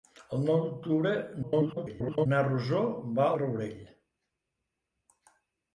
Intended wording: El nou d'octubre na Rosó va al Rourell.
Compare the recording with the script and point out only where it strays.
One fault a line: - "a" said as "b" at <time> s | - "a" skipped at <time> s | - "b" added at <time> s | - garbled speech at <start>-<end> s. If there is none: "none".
- garbled speech at 1.4-2.3 s
- "al" skipped at 3.3 s